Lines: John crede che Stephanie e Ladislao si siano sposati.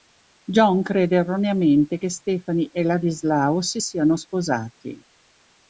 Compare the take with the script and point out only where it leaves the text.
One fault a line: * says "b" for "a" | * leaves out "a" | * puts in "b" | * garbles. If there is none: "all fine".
* puts in "erroneamente"